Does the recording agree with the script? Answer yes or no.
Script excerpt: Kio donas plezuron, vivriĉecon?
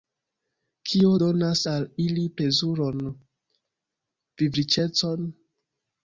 no